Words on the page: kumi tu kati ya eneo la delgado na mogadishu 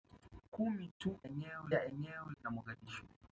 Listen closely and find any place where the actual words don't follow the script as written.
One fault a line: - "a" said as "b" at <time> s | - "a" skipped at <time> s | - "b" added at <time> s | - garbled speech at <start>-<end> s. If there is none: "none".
- "kati" said as "eneo" at 1.2 s
- "la delgado" skipped at 2.3 s